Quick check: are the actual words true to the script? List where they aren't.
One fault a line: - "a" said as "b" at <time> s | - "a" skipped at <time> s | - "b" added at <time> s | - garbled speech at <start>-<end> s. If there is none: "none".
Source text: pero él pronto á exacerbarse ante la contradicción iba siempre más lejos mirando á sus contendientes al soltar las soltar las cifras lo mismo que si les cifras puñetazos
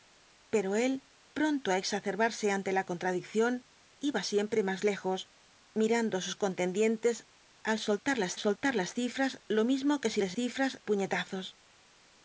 none